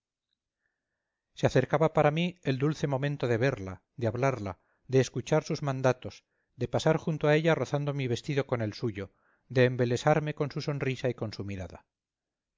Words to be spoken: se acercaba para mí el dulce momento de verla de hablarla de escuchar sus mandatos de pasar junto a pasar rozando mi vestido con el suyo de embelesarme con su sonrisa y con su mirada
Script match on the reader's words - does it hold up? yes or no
no